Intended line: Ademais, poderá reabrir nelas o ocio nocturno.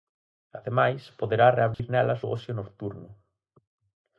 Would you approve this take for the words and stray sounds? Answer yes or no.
no